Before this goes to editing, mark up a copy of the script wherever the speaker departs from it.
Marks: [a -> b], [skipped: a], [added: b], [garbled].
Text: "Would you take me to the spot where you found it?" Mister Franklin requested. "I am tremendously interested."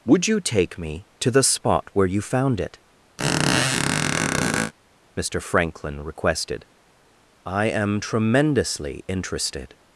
"Would you take me to the spot where you found it?" Mister Franklin requested. "I am tremendously interested."